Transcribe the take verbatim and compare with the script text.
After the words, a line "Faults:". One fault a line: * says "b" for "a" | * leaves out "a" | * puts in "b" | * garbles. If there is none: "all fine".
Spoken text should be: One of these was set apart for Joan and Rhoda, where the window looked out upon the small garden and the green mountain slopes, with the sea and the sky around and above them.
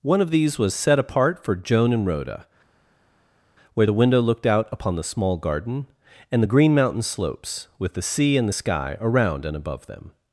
One of these was set apart for Joan and Rhoda, where the window looked out upon the small garden and the green mountain slopes, with the sea and the sky around and above them.
Faults:
all fine